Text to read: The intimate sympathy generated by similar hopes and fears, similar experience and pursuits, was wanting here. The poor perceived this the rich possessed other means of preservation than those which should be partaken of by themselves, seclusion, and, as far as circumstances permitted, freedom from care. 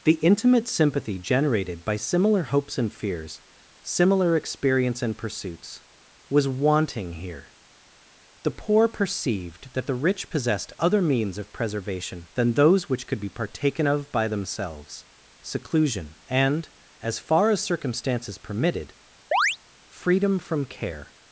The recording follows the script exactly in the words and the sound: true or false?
false